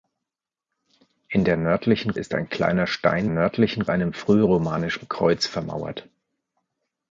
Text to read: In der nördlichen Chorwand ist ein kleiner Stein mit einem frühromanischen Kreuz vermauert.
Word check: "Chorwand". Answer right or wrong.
wrong